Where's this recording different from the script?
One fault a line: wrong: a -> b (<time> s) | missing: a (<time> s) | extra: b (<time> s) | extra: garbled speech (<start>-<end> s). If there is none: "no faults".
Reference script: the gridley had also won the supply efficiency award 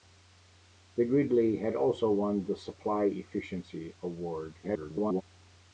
extra: garbled speech (4.6-5.2 s)